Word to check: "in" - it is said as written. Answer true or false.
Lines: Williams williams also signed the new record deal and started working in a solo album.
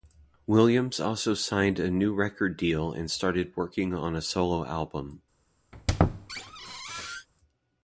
false